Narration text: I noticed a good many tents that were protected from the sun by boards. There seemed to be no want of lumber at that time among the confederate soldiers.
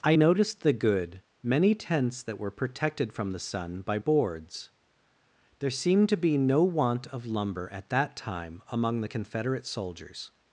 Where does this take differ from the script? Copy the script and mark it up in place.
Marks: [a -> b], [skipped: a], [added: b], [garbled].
I noticed [a -> the] good many tents that were protected from the sun by boards. There seemed to be no want of lumber at that time among the confederate soldiers.